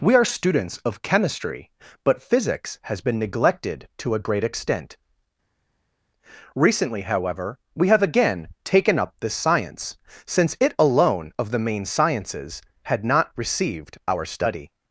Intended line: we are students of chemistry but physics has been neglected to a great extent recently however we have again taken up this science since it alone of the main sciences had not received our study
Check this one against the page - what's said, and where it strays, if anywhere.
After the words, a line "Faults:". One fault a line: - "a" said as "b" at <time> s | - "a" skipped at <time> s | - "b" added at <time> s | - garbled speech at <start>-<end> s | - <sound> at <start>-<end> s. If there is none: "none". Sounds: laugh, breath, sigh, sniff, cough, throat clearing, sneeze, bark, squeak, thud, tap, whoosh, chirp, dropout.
we are students of chemistry but physics has been neglected to a great extent recently however we have again taken up this science since it alone of the main sciences had not received our study
Faults:
none